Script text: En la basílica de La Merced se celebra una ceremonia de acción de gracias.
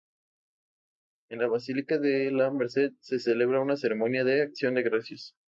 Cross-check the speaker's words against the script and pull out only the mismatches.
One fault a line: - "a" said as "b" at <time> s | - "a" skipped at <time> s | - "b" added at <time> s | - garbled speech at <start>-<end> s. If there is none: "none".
none